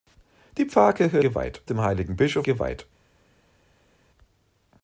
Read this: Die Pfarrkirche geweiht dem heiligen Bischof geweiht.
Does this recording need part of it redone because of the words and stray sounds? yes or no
no